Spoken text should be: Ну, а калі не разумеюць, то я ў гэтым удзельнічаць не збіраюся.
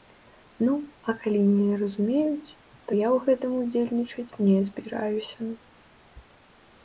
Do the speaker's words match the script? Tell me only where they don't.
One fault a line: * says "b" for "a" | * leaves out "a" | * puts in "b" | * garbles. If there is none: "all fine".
all fine